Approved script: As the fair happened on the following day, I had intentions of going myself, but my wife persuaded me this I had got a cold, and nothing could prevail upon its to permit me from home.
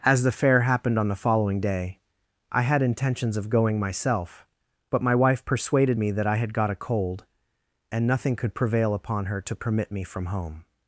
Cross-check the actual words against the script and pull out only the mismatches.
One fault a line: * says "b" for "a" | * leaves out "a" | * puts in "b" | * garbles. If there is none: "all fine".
* says "that" for "this"
* says "her" for "its"